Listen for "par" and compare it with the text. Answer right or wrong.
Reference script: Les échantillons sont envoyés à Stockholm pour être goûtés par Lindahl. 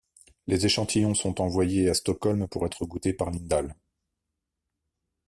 right